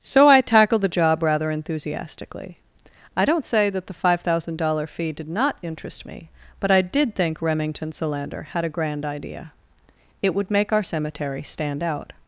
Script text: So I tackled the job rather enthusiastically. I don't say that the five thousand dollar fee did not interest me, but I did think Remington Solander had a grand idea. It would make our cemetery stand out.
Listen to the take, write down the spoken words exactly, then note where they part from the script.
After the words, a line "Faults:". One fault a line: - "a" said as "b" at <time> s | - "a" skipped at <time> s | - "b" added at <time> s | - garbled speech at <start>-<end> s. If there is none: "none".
So I tackled the job rather enthusiastically. I don't say that the five thousand dollar fee did not interest me, but I did think Remington Solander had a grand idea. It would make our cemetery stand out.
Faults:
none